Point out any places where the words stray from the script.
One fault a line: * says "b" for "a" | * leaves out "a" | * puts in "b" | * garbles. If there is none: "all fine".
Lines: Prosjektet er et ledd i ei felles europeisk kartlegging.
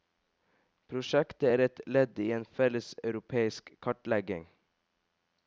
* says "en" for "ei"